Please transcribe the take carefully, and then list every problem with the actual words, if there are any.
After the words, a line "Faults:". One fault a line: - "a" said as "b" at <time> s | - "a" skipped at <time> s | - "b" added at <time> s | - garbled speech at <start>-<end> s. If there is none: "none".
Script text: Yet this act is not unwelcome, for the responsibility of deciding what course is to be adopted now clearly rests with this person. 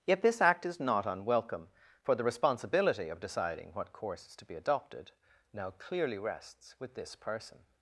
Yet this act is not unwelcome, for the responsibility of deciding what course is to be adopted now clearly rests with this person.
Faults:
none